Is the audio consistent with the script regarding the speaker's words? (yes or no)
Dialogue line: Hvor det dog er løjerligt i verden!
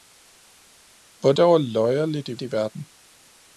no